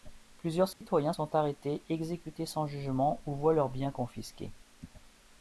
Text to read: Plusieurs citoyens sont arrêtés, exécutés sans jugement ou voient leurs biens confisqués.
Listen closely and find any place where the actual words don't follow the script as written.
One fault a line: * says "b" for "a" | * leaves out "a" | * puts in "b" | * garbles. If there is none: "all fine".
all fine